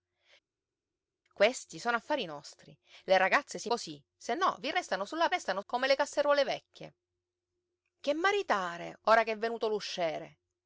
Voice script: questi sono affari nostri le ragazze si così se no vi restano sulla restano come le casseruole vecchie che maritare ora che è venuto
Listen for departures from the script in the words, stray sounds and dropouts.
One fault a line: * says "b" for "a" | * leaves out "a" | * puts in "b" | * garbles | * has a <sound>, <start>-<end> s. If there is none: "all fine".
all fine